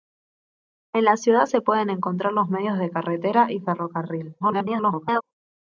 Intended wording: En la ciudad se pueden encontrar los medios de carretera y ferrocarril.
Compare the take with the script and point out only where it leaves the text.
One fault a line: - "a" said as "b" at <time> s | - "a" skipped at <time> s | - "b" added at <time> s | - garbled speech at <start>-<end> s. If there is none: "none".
- garbled speech at 4.4-5.2 s